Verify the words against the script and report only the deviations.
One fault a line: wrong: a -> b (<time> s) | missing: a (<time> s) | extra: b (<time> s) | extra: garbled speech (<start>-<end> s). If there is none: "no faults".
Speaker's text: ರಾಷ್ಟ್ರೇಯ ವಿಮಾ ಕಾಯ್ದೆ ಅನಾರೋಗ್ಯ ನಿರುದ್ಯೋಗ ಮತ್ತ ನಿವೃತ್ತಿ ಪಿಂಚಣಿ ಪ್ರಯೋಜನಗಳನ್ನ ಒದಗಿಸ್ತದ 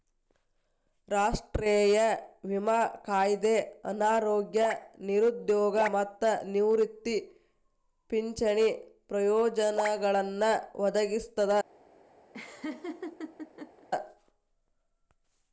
no faults